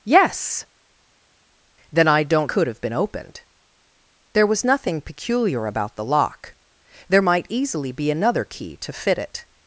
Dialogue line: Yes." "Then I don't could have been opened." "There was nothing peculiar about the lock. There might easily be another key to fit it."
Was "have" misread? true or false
false